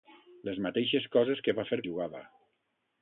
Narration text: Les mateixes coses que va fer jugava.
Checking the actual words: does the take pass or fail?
pass